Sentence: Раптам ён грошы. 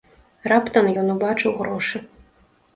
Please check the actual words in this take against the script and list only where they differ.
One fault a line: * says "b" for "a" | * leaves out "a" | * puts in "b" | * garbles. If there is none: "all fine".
* puts in "убачыў"